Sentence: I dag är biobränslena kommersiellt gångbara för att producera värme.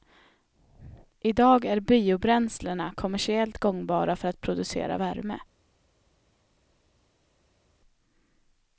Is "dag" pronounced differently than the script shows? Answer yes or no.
no